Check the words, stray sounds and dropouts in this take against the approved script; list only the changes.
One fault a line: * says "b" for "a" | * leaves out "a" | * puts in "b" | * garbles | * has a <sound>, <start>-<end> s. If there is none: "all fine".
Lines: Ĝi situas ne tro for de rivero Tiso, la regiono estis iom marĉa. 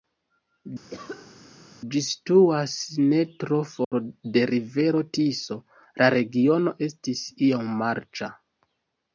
* has a cough, 0.9-1.4 s
* has a dropout, 3.8-3.9 s